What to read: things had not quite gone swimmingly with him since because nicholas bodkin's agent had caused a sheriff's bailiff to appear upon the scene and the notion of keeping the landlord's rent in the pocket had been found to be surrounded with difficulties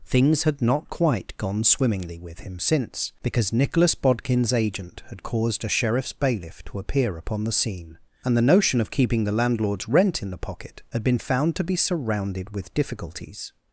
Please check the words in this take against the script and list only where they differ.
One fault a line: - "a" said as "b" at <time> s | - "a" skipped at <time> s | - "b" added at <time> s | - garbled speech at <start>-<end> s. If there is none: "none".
none